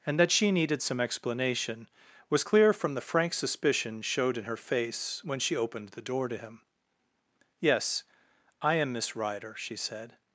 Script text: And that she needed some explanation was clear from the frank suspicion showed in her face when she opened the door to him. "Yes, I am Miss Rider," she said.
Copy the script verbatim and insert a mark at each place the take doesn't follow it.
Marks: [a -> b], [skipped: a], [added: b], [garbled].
And that she needed some explanation was clear from the frank suspicion showed in her face when she opened the door to him. "Yes, I am Miss Rider," she said.